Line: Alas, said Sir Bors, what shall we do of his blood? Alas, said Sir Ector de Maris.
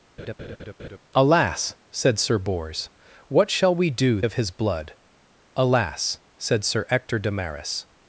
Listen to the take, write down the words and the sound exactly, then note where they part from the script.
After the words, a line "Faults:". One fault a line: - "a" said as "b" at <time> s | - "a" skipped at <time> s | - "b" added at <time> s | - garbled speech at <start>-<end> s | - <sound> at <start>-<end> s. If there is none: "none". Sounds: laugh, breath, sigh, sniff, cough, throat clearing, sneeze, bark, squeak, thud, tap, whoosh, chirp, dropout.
Alas, said Sir Bors, what shall we do of his blood? Alas, said Sir Ector de Maris.
Faults:
- laugh at 0.2-1.0 s